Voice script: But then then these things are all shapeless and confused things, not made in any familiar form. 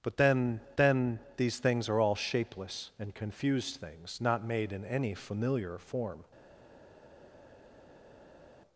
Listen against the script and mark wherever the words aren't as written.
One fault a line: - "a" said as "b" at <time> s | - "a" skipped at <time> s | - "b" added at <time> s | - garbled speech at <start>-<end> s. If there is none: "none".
none